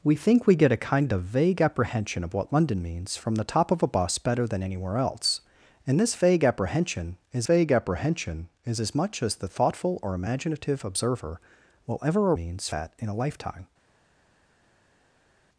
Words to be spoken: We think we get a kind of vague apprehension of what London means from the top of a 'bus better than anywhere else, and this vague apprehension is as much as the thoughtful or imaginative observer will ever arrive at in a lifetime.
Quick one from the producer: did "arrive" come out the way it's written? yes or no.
no